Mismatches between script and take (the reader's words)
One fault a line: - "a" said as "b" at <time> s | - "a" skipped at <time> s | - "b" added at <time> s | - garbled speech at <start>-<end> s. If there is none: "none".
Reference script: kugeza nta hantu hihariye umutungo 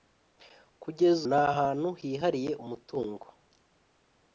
none